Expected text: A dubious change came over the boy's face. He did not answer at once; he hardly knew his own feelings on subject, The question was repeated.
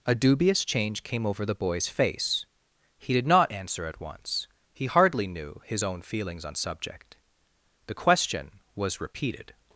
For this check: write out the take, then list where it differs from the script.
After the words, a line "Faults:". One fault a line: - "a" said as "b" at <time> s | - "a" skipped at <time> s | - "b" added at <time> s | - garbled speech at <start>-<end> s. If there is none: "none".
A dubious change came over the boy's face. He did not answer at once; he hardly knew his own feelings on subject, The question was repeated.
Faults:
none